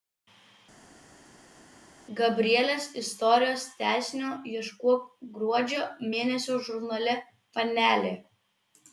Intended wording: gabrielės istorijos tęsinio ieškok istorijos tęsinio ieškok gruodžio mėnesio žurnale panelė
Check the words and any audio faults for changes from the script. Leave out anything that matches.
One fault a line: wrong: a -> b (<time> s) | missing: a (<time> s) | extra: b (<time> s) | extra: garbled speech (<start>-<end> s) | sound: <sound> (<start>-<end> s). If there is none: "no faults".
missing: istorijos tęsinio ieškok (5.1 s)